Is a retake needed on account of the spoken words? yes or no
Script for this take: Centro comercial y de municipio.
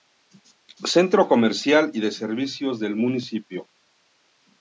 yes